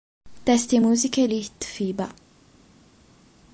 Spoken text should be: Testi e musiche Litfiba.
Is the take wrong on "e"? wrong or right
right